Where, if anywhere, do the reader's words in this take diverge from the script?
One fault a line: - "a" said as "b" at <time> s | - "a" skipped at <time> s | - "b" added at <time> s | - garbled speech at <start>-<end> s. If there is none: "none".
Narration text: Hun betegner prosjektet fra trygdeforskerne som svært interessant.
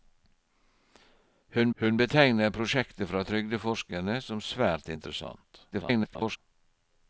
- "hun" added at 1.8 s
- garbled speech at 5.7-6.4 s